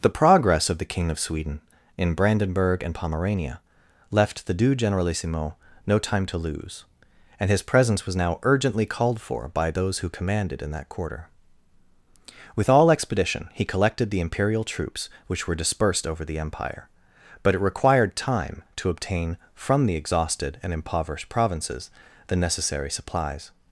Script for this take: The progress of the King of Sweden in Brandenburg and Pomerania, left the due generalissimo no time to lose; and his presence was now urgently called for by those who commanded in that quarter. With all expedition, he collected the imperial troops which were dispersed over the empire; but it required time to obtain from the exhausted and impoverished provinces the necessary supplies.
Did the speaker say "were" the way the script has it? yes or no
yes